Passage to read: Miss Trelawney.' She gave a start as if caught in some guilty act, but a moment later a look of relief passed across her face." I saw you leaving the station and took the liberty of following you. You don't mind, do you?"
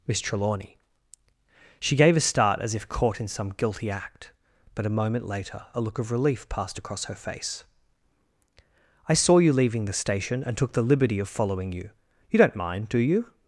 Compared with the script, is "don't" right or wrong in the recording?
right